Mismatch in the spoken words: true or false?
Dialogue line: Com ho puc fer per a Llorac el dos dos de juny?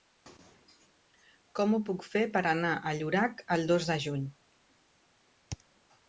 true